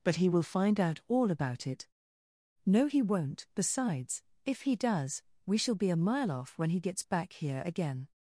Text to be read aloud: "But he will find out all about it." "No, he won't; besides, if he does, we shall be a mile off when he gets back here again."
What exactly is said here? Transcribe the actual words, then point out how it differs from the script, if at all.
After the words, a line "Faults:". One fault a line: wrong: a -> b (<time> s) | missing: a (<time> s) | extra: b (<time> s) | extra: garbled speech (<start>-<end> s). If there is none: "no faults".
"But he will find out all about it." "No, he won't; besides, if he does, we shall be a mile off when he gets back here again."
Faults:
no faults